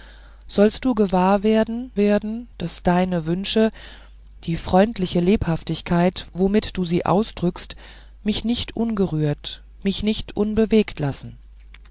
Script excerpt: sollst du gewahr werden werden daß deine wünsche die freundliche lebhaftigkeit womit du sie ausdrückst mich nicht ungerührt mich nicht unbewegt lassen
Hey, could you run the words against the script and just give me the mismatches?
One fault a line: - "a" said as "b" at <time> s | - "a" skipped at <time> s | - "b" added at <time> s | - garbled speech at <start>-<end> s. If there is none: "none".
none